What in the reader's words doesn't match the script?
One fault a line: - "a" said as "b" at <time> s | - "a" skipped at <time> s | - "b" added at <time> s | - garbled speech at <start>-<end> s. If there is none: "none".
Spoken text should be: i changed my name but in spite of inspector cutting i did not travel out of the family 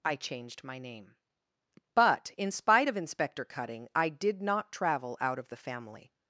none